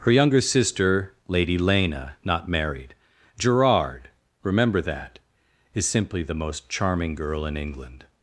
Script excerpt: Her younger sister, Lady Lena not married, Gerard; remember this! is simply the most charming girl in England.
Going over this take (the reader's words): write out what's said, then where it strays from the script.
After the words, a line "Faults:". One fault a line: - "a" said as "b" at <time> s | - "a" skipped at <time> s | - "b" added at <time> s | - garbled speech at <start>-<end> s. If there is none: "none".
Her younger sister, Lady Lena not married, Gerard; remember that! is simply the most charming girl in England.
Faults:
- "this" said as "that" at 4.8 s